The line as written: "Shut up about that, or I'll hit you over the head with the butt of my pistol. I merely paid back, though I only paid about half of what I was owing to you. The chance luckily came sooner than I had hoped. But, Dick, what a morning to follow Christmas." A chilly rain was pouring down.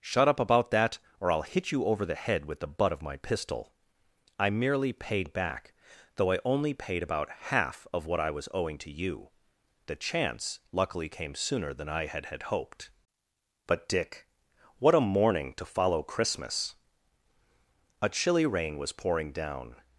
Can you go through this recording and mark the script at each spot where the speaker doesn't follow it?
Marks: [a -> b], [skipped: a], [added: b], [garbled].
"Shut up about that, or I'll hit you over the head with the butt of my pistol. I merely paid back, though I only paid about half of what I was owing to you. The chance luckily came sooner than I had [added: had] hoped. But, Dick, what a morning to follow Christmas." A chilly rain was pouring down.